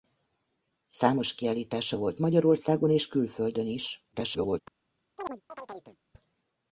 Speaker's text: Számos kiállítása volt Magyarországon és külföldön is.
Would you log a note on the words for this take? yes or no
yes